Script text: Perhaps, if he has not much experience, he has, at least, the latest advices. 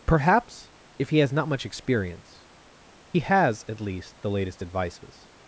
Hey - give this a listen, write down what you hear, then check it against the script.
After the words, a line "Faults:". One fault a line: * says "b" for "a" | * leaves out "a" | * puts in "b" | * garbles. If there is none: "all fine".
Perhaps, if he has not much experience, he has, at least, the latest advices.
Faults:
all fine